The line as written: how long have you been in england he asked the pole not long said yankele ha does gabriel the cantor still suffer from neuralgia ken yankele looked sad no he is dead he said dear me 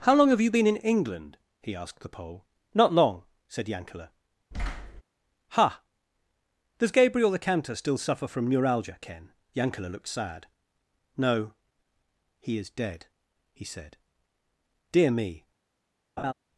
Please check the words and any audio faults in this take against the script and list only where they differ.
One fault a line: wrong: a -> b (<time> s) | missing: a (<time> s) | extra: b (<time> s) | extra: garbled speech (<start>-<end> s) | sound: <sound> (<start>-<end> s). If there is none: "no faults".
sound: thud (4.5-5.0 s)
sound: laugh (16.2-16.3 s)